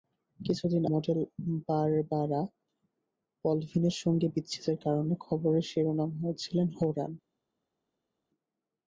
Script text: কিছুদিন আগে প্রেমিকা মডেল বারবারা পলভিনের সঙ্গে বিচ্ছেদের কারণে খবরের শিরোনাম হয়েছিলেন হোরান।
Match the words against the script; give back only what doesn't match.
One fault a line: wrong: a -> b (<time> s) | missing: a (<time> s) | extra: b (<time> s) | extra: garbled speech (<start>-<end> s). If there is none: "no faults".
missing: আগে প্রেমিকা (0.8 s)